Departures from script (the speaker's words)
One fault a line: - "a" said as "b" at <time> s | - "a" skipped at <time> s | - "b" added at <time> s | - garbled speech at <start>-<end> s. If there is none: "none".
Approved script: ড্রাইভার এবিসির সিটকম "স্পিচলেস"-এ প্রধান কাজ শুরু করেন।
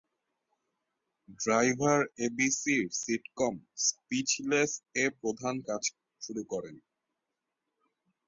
none